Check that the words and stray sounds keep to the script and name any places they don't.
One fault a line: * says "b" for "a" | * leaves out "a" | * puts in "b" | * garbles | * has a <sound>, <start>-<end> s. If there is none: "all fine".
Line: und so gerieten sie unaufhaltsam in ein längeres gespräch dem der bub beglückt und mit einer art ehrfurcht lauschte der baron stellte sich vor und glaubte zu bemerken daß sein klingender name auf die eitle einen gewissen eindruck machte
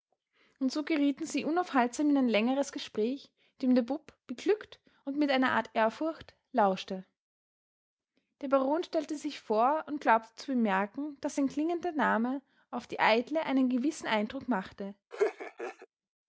* has a laugh, 15.1-15.9 s